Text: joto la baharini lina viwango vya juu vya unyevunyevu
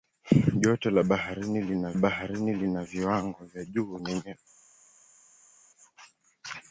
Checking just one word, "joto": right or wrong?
right